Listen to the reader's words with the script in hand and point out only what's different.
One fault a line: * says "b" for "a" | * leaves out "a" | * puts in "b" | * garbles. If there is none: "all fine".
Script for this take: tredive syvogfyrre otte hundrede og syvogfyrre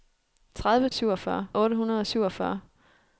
all fine